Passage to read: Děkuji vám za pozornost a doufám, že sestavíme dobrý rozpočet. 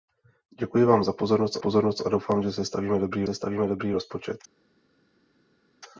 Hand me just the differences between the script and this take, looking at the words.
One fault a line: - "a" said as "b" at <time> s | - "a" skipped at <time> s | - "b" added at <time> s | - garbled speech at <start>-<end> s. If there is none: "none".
- "pozornost" added at 1.6 s
- "sestavíme dobrý" added at 3.2 s